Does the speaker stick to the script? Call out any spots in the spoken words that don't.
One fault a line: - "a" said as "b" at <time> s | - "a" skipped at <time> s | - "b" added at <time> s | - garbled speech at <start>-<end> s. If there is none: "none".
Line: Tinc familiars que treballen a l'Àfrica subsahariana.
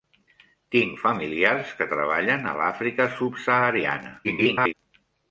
- garbled speech at 4.2-4.7 s